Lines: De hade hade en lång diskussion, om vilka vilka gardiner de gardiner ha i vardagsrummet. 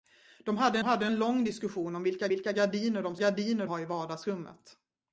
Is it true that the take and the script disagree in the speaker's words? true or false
false